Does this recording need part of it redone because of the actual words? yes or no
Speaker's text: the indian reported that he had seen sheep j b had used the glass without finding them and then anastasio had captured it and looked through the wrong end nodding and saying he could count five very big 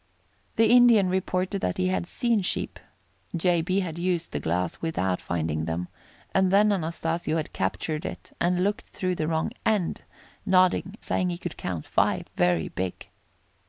yes